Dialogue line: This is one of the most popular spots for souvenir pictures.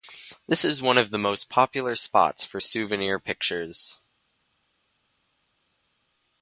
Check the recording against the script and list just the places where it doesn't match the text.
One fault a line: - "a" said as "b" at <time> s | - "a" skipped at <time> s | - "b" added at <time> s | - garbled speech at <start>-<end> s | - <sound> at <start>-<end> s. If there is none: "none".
none